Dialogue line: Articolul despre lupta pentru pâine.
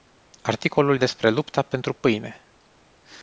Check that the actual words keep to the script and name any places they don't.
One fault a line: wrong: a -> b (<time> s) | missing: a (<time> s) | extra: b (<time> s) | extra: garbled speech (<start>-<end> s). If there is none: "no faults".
no faults